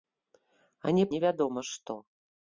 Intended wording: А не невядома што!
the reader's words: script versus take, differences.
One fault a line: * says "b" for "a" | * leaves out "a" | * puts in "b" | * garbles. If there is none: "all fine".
all fine